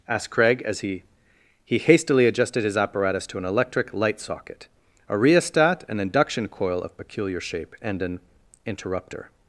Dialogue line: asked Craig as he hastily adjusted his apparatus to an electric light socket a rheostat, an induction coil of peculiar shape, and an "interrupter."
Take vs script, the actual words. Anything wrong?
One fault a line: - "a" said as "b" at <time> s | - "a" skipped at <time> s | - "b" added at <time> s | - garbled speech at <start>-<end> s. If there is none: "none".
- "he" added at 1.6 s